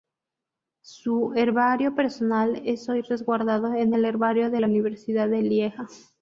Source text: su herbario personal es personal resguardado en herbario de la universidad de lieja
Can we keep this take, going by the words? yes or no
no